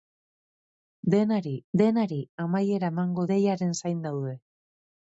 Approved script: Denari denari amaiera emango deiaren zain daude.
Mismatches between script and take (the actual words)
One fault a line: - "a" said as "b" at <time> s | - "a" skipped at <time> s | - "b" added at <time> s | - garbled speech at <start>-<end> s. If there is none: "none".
none